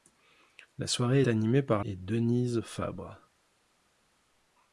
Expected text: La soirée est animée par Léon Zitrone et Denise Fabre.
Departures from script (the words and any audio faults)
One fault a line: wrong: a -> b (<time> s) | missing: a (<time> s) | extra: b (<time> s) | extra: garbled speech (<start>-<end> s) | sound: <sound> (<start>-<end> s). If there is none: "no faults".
missing: est (1.2 s)
missing: Léon Zitrone (1.9 s)